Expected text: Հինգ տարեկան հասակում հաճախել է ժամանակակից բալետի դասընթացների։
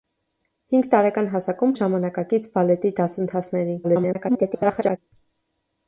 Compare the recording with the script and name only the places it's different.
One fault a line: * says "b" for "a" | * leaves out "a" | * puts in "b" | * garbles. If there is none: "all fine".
* leaves out "հաճախել"
* garbles